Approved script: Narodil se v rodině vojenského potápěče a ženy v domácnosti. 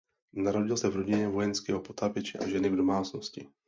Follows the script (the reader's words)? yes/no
yes